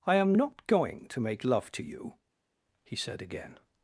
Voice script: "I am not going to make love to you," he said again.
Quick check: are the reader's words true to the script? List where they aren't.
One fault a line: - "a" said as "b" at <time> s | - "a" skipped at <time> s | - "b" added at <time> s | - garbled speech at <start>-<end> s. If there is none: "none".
none